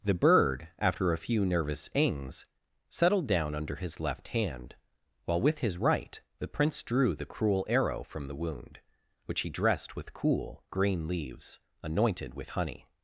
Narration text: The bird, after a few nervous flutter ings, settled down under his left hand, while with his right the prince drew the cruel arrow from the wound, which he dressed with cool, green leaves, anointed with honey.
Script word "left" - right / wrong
right